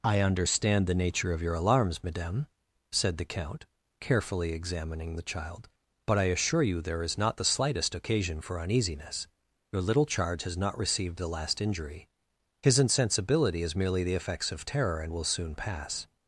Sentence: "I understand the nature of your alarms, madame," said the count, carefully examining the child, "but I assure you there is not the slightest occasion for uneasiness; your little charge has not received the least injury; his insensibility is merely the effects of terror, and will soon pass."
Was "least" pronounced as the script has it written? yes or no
no